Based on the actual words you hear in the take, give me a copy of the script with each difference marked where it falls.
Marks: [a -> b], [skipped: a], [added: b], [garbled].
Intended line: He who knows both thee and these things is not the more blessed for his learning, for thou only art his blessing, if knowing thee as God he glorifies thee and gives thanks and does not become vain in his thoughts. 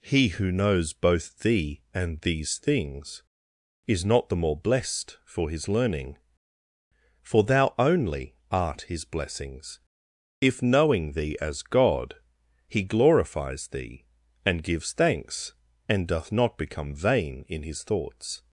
He who knows both thee and these things is not the more blessed for his learning, for thou only art his [blessing, -> blessings] if knowing thee as God he glorifies thee and gives thanks and [does -> doth] not become vain in his thoughts.